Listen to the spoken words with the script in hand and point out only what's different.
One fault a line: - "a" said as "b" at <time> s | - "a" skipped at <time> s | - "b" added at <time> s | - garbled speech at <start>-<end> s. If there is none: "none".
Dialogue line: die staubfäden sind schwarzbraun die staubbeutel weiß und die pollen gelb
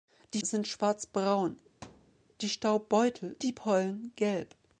- "staubfäden" skipped at 0.4 s
- "weiß und" skipped at 3.4 s